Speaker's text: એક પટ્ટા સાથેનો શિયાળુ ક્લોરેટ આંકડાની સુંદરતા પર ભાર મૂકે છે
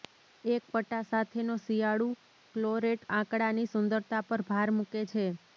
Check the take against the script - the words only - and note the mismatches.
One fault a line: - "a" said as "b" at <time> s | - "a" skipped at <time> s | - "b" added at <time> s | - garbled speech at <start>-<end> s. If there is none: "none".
none